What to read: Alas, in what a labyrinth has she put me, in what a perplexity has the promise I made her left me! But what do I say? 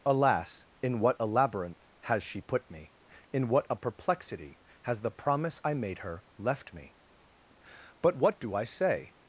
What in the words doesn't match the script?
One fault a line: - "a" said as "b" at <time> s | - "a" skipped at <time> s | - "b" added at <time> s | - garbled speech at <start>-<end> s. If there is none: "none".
none